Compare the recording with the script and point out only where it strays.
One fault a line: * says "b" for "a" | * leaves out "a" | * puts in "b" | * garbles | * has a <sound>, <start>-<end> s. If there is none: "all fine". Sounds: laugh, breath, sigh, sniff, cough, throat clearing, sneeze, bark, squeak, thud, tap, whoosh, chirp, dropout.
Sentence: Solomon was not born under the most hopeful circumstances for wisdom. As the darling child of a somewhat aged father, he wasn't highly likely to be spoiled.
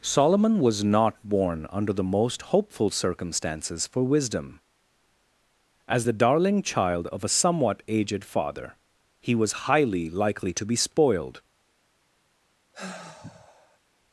* says "was" for "wasn't"
* has a sigh, 12.7-13.8 s